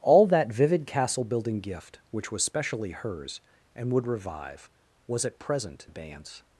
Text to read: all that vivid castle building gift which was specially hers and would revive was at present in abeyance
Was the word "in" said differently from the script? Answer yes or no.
yes